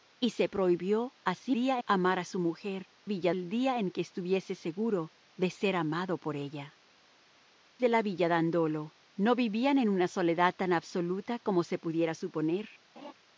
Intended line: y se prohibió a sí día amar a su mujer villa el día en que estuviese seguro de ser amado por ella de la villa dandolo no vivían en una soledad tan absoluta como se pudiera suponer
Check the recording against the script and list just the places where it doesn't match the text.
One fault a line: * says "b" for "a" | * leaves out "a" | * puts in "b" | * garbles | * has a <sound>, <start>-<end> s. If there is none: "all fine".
* has a laugh, 13.0-13.1 s